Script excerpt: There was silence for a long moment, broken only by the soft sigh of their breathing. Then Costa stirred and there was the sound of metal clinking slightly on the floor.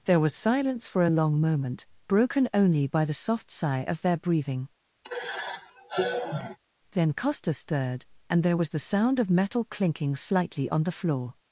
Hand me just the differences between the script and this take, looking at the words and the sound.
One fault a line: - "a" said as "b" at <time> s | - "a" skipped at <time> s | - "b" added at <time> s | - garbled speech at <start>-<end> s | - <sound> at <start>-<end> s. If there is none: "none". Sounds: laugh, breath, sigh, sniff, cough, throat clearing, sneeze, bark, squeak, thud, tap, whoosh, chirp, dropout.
- sigh at 5.0-6.6 s